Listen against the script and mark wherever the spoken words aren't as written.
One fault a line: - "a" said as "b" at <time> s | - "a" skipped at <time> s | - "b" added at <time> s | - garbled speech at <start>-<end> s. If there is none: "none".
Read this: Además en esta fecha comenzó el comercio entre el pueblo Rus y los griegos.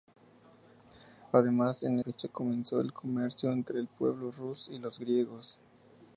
- "esta" skipped at 2.0 s